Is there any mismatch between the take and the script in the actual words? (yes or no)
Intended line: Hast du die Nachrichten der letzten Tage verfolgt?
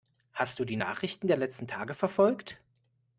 no